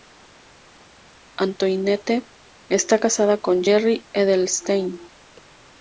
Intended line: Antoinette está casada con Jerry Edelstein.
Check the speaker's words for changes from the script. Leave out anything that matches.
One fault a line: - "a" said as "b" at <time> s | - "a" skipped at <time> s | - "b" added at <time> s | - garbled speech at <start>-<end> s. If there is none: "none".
none